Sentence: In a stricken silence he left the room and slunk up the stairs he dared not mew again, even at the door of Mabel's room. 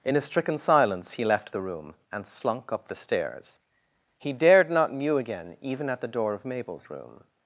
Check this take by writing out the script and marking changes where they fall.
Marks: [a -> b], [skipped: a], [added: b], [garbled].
In a stricken silence he left the room and slunk up the stairs he dared not mew again, even at the door of Mabel's room.